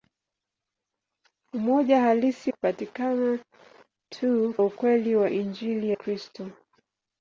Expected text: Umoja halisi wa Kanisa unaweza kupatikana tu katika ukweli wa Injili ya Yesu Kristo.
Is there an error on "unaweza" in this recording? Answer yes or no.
yes